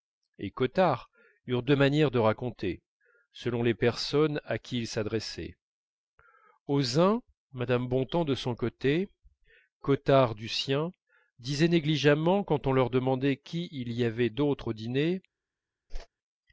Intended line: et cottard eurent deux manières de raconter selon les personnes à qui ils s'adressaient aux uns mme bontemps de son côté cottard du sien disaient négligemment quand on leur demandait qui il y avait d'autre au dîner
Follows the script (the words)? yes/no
yes